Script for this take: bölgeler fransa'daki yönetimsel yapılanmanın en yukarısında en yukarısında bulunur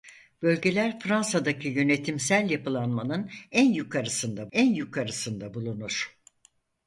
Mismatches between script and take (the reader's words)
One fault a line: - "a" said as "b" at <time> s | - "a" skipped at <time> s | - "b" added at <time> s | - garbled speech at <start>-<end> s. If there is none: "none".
none